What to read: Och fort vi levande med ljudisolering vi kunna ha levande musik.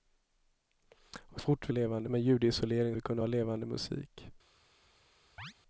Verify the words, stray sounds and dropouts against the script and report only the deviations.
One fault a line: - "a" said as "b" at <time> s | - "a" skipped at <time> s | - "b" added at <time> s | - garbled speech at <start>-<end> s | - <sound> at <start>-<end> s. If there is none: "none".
- chirp at 5.4-5.5 s